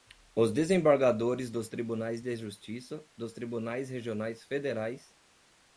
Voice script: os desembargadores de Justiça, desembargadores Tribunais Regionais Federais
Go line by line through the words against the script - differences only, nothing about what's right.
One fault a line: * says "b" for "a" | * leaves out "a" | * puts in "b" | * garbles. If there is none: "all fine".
* puts in "dos Tribunais"
* says "dos" for "desembargadores"